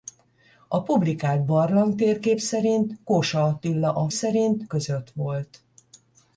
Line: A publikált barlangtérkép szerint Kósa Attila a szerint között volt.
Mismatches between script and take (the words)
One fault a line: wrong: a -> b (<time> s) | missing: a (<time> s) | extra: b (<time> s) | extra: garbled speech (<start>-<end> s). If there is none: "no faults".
no faults